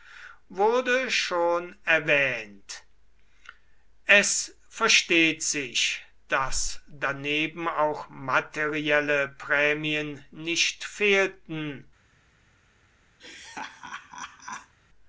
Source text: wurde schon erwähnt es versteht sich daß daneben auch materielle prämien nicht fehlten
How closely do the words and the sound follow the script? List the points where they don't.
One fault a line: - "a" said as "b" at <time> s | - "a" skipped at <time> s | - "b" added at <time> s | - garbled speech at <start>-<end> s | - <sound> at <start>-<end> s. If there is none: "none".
- laugh at 13.2-14.7 s